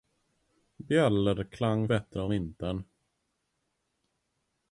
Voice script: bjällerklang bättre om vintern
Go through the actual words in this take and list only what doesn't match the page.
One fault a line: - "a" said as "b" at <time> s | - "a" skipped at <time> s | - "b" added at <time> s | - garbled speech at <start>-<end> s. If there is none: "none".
none